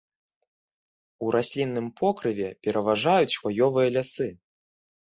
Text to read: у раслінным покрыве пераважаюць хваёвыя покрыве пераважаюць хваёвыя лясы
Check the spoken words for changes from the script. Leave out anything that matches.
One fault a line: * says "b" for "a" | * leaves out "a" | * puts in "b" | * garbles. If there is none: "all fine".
* leaves out "покрыве пераважаюць хваёвыя"